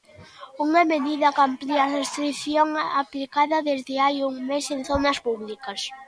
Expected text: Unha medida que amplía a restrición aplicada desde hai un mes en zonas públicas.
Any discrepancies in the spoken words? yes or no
no